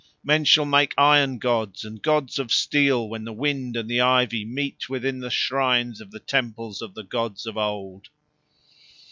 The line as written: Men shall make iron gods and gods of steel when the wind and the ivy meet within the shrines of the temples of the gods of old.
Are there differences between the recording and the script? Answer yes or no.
no